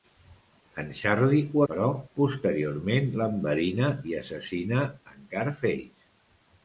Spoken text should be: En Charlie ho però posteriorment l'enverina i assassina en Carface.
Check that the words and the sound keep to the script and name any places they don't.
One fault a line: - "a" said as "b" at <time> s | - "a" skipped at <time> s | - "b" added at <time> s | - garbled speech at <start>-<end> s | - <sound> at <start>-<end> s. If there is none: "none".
none